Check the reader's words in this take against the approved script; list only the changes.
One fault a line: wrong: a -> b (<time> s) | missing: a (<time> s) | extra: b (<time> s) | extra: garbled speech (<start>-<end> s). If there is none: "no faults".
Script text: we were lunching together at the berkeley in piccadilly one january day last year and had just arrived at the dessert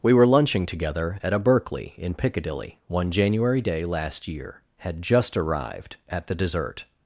wrong: the -> a (1.3 s)
missing: and (4.6 s)